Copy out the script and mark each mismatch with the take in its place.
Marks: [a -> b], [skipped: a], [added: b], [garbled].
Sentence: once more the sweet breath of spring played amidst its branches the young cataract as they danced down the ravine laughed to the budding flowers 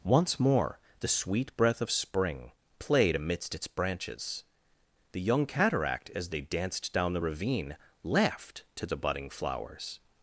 once more the sweet breath of spring played amidst its branches the young cataract as they danced down the ravine laughed to the budding flowers